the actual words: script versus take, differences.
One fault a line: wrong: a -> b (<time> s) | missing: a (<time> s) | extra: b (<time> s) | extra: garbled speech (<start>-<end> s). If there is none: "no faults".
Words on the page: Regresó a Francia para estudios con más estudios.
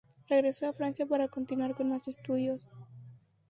wrong: estudios -> continuar (1.3 s)